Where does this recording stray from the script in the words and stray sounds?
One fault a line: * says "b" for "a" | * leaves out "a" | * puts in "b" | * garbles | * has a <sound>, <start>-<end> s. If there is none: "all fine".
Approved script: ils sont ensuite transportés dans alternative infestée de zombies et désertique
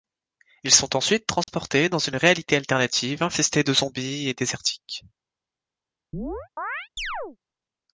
* has a dropout, 1.4-1.5 s
* puts in "une réalité"
* has a chirp, 6.1-7.4 s